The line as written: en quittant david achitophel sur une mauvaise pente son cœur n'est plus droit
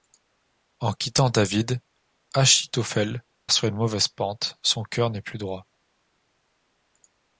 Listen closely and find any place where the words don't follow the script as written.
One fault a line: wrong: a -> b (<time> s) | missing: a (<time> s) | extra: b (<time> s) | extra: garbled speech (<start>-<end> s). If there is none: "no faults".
no faults